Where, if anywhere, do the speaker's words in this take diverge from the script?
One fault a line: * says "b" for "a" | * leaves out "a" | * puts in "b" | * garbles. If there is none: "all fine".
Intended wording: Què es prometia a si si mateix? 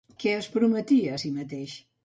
* leaves out "si"